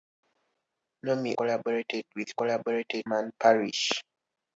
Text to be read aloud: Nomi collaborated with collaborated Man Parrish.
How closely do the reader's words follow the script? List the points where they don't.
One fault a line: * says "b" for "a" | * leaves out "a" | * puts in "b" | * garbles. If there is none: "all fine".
all fine